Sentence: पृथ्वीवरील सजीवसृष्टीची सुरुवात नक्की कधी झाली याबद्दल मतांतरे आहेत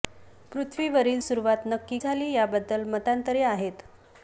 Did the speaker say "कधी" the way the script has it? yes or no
no